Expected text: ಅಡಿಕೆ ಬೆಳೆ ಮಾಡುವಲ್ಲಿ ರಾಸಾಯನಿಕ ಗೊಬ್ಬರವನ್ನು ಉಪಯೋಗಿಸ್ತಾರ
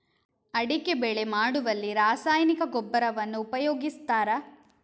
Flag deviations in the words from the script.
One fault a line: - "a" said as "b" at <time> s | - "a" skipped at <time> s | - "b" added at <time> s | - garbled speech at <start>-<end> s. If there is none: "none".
none